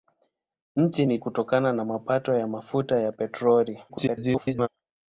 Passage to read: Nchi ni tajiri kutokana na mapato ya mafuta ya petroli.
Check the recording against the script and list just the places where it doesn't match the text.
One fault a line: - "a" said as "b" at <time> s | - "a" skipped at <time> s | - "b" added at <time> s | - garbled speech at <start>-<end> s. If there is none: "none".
- "tajiri" skipped at 1.2 s
- garbled speech at 3.9-4.7 s